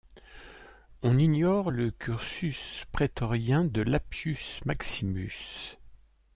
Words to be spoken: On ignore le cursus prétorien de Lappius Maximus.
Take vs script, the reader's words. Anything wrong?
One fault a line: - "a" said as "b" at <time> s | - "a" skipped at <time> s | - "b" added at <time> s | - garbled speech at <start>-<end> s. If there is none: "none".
none